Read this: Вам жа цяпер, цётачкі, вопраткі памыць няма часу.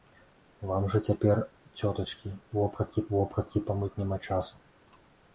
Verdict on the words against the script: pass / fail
fail